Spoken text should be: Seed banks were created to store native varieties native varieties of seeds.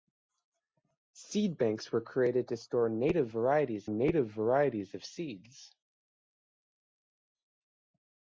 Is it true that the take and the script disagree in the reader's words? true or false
false